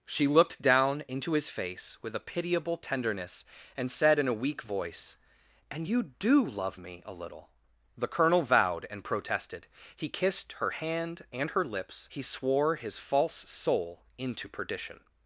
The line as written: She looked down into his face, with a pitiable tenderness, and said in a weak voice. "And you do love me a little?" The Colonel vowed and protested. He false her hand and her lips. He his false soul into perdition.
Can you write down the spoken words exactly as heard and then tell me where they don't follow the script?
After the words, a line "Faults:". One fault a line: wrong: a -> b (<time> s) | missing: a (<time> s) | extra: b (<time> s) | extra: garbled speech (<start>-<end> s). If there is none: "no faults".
She looked down into his face, with a pitiable tenderness, and said in a weak voice. "And you do love me a little?" The Colonel vowed and protested. He kissed her hand and her lips. He swore his false soul into perdition.
Faults:
wrong: false -> kissed (10.1 s)
extra: swore (12.2 s)